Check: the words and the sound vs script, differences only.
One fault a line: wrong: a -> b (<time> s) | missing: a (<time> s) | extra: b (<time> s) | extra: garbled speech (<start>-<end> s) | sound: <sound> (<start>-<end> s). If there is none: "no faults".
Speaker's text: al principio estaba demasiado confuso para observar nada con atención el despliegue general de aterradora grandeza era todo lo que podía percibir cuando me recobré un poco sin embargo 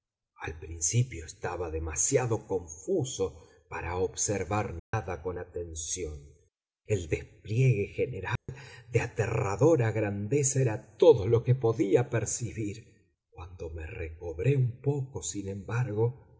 sound: dropout (4.8-4.9 s)
sound: dropout (8.4-8.5 s)